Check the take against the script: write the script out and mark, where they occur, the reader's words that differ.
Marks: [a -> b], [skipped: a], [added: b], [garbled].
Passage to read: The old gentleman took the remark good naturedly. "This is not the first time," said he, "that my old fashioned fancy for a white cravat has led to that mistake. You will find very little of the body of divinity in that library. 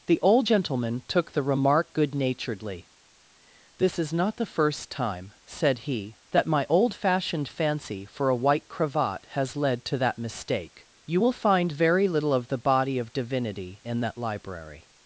The old gentleman took the remark good naturedly. "This is not the first time," said he, "that my old fashioned fancy for a white cravat has led to that mistake. You will find very little of the body of divinity in that library.